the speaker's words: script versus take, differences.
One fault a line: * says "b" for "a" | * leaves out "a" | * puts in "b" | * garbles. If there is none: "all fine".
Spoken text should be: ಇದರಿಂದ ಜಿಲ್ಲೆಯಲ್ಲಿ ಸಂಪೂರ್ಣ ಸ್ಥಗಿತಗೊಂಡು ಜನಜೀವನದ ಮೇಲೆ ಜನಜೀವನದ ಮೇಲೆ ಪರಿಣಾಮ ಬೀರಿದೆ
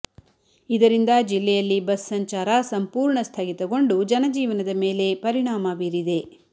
* puts in "ಬಸ್ ಸಂಚಾರ"
* leaves out "ಜನಜೀವನದ ಮೇಲೆ"